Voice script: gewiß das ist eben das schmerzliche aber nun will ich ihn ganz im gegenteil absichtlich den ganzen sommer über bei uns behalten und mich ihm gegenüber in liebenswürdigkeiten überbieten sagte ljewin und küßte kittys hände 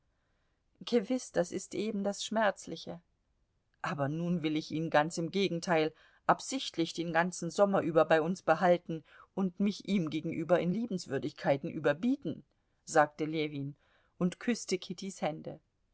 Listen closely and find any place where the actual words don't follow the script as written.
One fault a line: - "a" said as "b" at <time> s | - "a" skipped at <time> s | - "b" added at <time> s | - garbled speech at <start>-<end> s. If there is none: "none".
none